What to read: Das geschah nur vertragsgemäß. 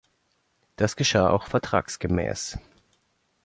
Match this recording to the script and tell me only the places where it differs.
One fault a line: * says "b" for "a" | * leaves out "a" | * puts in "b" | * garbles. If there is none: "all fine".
* says "auch" for "nur"